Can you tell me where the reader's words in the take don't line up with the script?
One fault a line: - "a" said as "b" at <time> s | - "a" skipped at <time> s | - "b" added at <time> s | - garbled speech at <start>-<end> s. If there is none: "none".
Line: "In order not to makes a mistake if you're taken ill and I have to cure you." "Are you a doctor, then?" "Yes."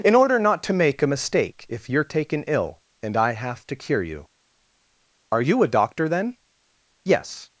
- "makes" said as "make" at 0.7 s